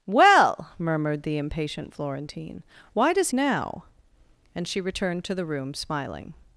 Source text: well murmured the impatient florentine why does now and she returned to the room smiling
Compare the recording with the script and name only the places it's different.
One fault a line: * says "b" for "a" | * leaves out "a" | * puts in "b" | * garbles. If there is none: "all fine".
all fine